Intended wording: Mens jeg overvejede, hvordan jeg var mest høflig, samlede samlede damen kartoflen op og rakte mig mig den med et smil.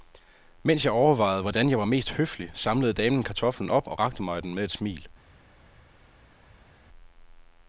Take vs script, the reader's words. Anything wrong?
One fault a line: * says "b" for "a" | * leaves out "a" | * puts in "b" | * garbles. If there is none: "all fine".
* leaves out "samlede"
* leaves out "mig"